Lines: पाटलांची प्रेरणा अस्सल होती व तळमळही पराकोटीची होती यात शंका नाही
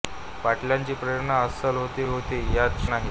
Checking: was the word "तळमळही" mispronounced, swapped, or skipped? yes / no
yes